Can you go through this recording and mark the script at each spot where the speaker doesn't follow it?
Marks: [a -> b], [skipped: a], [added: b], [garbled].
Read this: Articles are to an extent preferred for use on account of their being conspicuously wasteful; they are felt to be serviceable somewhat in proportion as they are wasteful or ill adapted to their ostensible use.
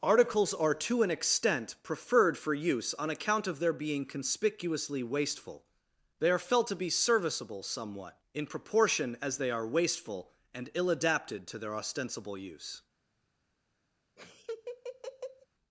Articles are to an extent preferred for use on account of their being conspicuously wasteful; they are felt to be serviceable somewhat in proportion as they are wasteful [or -> and] ill adapted to their ostensible use.